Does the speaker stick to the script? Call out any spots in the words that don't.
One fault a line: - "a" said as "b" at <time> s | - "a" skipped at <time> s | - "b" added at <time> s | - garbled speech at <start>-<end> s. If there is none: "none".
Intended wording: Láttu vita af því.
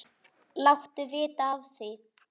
none